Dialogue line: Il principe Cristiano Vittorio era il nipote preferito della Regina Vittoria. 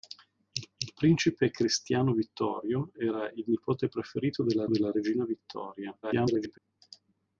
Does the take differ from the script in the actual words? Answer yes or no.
yes